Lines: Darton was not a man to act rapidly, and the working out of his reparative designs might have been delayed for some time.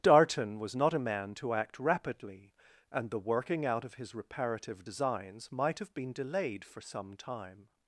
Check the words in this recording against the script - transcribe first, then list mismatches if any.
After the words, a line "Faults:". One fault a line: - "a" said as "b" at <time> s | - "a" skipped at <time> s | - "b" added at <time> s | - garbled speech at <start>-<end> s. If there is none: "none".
Darton was not a man to act rapidly, and the working out of his reparative designs might have been delayed for some time.
Faults:
none